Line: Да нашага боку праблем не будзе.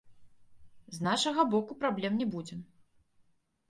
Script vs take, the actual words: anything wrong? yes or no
yes